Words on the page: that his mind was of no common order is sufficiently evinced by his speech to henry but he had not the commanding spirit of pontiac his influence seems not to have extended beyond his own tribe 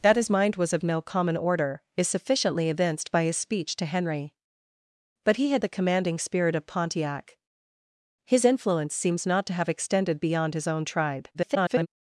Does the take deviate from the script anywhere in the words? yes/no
yes